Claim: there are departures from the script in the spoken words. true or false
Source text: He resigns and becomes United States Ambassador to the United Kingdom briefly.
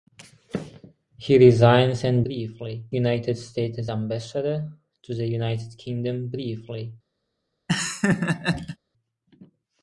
true